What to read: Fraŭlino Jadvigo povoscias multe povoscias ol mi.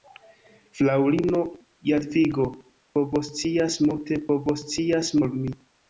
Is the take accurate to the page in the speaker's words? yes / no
yes